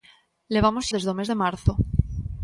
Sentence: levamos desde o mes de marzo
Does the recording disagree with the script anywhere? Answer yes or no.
no